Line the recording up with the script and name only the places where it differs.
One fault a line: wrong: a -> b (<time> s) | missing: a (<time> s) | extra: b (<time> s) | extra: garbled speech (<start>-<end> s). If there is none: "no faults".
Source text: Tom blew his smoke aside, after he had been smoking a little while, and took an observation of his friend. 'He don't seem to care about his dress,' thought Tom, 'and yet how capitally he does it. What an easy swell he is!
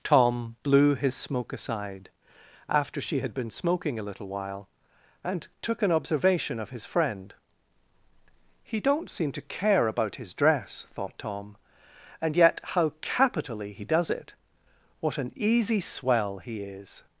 wrong: he -> she (3.0 s)